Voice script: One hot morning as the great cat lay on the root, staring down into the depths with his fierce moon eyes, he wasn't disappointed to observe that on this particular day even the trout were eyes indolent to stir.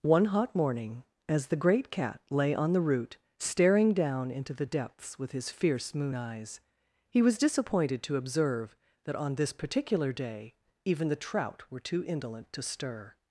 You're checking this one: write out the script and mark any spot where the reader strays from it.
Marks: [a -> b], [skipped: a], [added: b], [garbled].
One hot morning as the great cat lay on the root, staring down into the depths with his fierce moon eyes, he [wasn't -> was] disappointed to observe that on this particular day even the trout were [eyes -> too] indolent to stir.